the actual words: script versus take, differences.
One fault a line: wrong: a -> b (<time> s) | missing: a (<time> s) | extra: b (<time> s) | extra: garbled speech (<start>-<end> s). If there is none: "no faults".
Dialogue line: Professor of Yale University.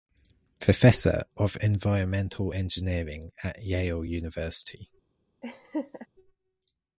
extra: Environmental Engineering at (1.6 s)